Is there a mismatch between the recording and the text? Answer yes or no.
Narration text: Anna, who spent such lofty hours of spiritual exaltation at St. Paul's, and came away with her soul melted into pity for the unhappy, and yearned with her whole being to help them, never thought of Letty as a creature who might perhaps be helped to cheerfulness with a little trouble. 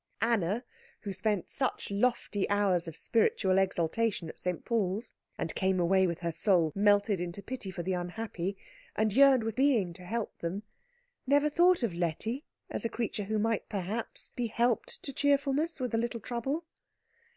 yes